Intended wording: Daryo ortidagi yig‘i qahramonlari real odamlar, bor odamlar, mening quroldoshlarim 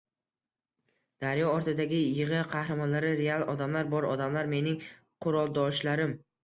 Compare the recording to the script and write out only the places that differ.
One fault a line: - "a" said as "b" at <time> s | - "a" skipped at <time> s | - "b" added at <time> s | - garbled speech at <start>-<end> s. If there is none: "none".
none